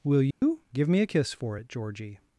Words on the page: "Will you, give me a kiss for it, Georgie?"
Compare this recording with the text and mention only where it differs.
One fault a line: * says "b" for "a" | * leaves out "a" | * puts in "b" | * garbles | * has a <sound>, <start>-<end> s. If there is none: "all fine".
* has a dropout, 0.3-0.4 s